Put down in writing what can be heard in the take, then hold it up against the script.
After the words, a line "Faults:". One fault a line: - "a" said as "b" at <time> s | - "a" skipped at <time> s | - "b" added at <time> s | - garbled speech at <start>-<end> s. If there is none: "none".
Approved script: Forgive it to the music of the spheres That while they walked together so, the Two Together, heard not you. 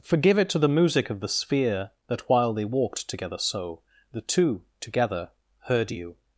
Forgive it to the music of the sphere That while they walked together so, the Two Together, heard you.
Faults:
- "spheres" said as "sphere" at 1.3 s
- "not" skipped at 5.9 s